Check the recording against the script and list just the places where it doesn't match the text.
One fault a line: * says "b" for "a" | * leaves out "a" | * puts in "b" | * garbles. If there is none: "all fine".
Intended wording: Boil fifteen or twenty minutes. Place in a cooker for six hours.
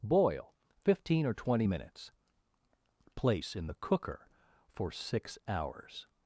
* says "the" for "a"